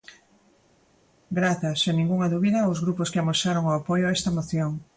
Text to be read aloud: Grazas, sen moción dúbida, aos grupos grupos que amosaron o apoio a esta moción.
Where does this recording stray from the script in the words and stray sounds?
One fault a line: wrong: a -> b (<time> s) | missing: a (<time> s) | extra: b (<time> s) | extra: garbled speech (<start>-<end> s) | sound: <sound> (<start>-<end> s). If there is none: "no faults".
wrong: moción -> ningunha (2.0 s)
missing: grupos (3.1 s)